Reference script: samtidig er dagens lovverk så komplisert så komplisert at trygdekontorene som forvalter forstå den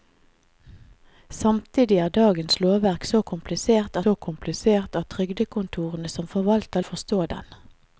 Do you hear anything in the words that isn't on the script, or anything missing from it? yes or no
no